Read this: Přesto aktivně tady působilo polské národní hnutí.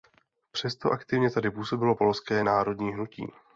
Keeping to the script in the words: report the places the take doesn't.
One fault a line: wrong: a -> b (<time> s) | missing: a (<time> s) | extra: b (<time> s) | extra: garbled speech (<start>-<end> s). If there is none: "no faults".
no faults